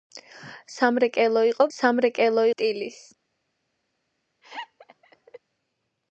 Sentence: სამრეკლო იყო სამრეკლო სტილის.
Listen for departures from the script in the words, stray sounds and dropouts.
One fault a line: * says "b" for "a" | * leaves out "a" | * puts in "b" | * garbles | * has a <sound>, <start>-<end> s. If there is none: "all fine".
* has a laugh, 4.4-5.4 s